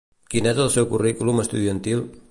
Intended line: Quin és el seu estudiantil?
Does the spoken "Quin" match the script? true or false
true